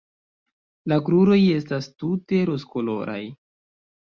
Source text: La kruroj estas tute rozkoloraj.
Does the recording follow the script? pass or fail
pass